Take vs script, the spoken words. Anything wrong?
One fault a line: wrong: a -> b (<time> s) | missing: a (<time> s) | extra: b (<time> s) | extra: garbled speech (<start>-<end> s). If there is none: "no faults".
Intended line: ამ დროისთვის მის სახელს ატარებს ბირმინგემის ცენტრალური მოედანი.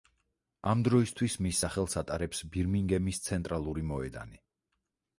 no faults